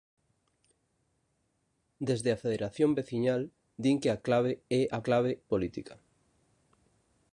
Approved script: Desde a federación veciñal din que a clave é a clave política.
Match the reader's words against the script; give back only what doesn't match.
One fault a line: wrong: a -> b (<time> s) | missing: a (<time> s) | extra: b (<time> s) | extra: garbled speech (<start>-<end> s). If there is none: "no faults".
no faults